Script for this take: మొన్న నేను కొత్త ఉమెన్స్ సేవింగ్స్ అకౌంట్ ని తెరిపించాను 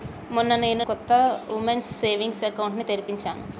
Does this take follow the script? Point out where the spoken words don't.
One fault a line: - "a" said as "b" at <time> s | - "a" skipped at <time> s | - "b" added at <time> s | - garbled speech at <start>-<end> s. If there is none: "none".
none